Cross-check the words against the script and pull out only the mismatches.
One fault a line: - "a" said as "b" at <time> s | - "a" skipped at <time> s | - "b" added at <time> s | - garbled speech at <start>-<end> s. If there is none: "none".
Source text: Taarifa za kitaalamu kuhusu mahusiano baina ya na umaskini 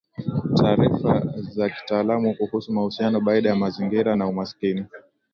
- "mazingira" added at 3.5 s